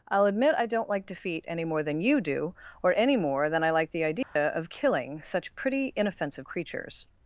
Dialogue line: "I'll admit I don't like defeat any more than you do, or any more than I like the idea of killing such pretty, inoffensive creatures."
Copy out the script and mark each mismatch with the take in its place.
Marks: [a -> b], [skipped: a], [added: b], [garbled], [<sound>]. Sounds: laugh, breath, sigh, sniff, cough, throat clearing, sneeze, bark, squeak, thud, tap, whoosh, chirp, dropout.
"I'll admit I don't like defeat any more than you do, or any more than I like the idea [dropout] of killing such pretty, inoffensive creatures."